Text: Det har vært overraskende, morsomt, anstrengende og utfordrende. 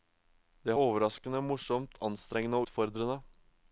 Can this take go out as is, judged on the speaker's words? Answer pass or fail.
fail